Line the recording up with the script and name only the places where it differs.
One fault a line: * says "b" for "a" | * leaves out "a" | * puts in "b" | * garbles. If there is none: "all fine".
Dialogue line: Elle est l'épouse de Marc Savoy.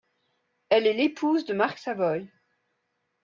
all fine